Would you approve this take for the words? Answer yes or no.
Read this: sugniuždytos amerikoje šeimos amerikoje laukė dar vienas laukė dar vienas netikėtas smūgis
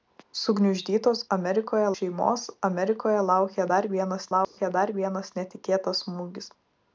yes